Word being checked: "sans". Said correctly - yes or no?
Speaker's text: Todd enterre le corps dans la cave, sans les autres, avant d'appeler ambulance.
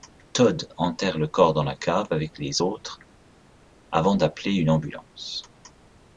no